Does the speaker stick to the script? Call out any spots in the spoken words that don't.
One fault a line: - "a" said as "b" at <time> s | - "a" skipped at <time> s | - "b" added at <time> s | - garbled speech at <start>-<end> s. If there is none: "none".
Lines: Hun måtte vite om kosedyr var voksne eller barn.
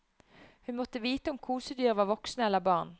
none